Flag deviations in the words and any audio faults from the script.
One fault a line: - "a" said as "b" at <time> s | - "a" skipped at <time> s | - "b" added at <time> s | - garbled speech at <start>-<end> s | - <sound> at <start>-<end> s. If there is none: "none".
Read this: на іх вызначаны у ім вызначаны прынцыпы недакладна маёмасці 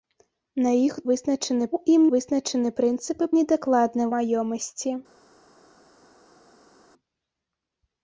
none